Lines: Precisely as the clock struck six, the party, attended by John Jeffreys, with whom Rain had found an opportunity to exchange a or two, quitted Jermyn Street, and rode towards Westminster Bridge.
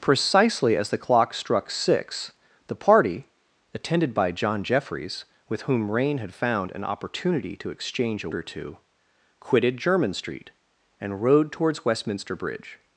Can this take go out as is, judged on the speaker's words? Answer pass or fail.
pass